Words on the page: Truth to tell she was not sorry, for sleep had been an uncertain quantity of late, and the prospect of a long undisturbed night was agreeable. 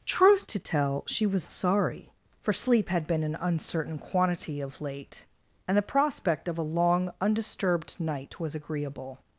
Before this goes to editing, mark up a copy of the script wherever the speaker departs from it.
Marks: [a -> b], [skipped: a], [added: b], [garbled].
Truth to tell she was [skipped: not] sorry, for sleep had been an uncertain quantity of late, and the prospect of a long undisturbed night was agreeable.